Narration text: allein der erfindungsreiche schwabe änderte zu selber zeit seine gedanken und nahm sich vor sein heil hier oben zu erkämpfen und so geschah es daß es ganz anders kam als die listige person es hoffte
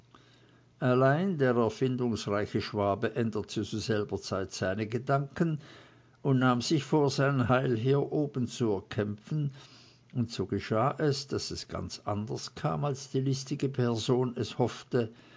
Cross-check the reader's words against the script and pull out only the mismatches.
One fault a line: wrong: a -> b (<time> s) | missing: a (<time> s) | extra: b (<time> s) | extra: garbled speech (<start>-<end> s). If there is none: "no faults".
no faults